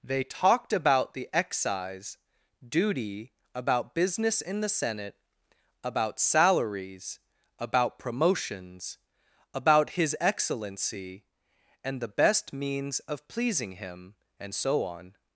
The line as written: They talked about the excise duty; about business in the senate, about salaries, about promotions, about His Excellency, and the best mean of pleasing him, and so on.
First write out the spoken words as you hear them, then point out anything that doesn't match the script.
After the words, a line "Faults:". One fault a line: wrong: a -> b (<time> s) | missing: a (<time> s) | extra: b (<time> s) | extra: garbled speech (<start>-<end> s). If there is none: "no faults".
They talked about the excise duty; about business in the senate, about salaries, about promotions, about His Excellency, and the best means of pleasing him, and so on.
Faults:
wrong: mean -> means (12.5 s)